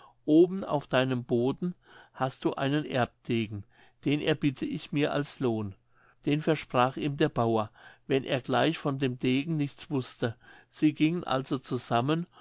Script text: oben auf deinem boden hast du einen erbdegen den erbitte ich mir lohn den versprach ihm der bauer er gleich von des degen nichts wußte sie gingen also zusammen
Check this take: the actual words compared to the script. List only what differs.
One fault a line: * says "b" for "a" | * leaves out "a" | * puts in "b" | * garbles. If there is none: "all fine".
* puts in "als"
* puts in "wenn"
* says "dem" for "des"